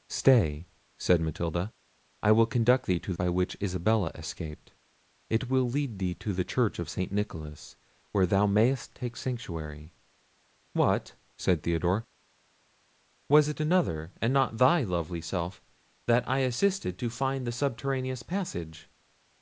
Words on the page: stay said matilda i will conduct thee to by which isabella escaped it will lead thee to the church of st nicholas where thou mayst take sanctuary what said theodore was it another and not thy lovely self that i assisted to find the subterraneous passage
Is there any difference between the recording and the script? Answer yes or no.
no